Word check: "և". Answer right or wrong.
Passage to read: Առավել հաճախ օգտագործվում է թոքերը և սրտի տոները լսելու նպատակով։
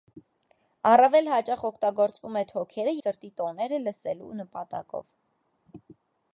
wrong